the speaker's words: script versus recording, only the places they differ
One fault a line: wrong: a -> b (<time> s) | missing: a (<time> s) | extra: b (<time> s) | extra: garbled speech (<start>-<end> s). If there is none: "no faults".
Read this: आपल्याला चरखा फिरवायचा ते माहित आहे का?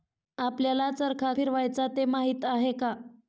no faults